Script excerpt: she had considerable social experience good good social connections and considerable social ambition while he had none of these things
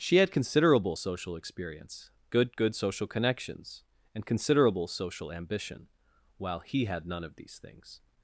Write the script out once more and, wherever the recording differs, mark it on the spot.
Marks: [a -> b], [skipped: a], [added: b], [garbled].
she had considerable social experience good good social connections and considerable social ambition while he had none of these things